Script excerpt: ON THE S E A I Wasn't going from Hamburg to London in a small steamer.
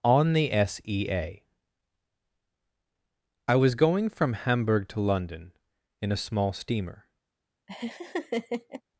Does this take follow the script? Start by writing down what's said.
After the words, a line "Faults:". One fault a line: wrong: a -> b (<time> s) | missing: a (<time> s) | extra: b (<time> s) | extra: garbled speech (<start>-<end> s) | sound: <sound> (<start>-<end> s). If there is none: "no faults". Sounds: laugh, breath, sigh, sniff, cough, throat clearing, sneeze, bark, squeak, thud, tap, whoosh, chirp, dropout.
ON THE S E A I WAS going from Hamburg to London in a small steamer.
Faults:
wrong: Wasn't -> WAS (3.5 s)
sound: laugh (7.7-8.8 s)